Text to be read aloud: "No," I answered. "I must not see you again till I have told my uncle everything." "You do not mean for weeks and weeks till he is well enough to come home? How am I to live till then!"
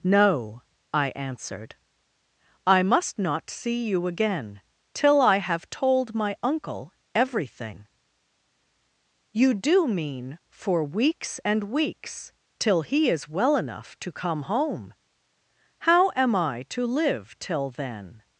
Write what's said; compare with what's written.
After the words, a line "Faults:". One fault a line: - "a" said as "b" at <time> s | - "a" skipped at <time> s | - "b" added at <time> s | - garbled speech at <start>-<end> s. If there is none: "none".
"No," I answered. "I must not see you again till I have told my uncle everything." "You do mean for weeks and weeks till he is well enough to come home? How am I to live till then!"
Faults:
- "not" skipped at 9.9 s